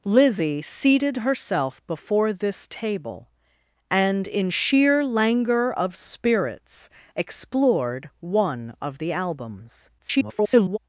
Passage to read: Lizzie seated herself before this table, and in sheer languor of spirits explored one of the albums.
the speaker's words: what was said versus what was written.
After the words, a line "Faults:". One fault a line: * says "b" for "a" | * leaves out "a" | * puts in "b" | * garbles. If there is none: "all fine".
Lizzie seated herself before this table, and in sheer languor of spirits explored one of the albums. [garbled]
Faults:
* garbles